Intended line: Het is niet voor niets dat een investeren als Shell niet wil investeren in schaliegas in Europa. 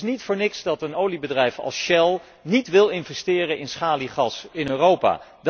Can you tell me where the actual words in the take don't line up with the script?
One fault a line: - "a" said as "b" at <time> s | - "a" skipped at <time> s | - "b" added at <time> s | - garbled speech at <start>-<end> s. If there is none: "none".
- "investeren" said as "oliebedrijf" at 0.9 s